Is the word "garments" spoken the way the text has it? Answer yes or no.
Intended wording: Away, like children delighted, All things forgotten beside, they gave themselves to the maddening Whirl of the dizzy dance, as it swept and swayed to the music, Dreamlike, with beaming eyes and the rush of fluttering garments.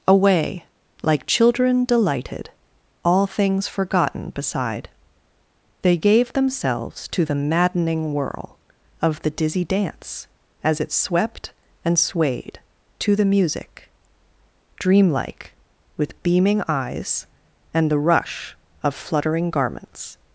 yes